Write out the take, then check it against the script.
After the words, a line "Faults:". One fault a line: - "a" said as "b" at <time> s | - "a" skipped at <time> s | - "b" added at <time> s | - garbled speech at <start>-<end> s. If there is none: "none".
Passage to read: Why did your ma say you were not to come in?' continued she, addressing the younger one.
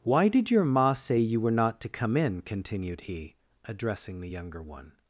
Why did your ma say you were not to come in?' continued he, addressing the younger one.
Faults:
- "she" said as "he" at 3.1 s